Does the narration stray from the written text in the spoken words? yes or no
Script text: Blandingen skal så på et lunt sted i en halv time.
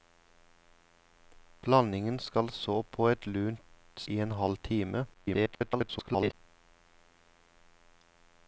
yes